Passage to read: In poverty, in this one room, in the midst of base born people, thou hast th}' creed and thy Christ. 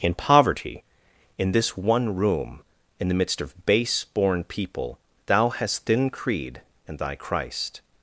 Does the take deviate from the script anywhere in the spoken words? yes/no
yes